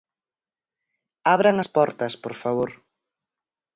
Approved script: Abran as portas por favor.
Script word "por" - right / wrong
right